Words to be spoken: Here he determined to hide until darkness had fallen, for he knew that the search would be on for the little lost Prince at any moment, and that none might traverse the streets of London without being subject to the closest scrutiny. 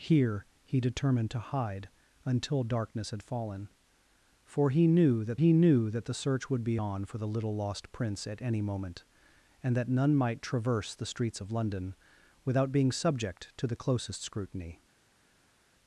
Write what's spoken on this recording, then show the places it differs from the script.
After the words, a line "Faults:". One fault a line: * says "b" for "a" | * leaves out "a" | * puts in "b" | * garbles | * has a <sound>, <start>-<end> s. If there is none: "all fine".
Here he determined to hide until darkness had fallen, for he knew that he knew that the search would be on for the little lost Prince at any moment, and that none might traverse the streets of London without being subject to the closest scrutiny.
Faults:
* puts in "he knew that"